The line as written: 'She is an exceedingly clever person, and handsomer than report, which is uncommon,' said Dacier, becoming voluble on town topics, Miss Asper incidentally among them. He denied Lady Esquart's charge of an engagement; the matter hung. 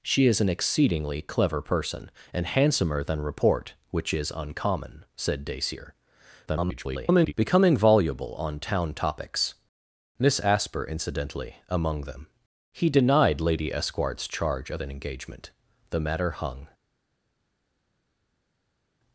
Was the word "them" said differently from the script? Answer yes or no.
no